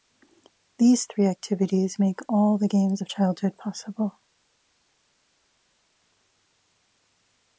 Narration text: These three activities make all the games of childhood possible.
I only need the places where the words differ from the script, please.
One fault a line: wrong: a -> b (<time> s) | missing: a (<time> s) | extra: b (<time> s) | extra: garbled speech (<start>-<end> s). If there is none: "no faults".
no faults